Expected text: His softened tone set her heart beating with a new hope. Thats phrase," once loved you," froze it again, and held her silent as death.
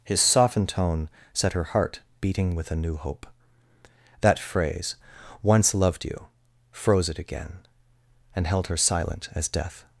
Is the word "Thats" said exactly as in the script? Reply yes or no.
no